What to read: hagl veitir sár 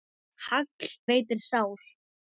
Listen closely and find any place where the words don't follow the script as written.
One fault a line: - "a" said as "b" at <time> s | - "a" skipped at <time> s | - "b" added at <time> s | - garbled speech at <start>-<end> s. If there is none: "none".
none